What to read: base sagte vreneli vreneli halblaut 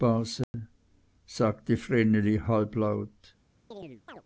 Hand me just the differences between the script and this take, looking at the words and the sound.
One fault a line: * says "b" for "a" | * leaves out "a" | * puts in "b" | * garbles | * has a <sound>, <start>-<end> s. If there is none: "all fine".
* has a dropout, 0.4-0.5 s
* leaves out "vreneli"
* has a chirp, 3.7-4.2 s